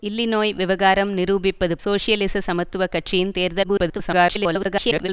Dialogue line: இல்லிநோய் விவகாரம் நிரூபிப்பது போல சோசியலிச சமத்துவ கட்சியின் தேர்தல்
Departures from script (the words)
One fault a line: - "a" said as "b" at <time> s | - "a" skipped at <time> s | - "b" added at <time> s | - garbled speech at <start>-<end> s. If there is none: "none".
- "போல" skipped at 1.8 s
- garbled speech at 3.6-5.1 s